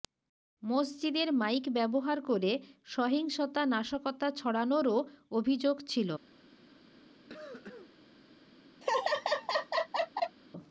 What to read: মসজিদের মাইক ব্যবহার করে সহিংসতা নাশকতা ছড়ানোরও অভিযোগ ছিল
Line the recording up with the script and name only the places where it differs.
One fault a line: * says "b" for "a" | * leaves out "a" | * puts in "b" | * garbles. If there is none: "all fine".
all fine